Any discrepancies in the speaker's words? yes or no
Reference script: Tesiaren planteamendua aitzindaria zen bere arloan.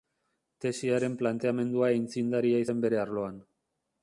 no